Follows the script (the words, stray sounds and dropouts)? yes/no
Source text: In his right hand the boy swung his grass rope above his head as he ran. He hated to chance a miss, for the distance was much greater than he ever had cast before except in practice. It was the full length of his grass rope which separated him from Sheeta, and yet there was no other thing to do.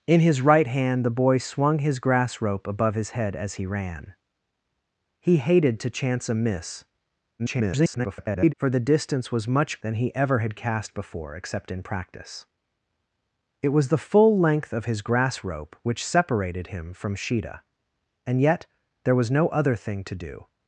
no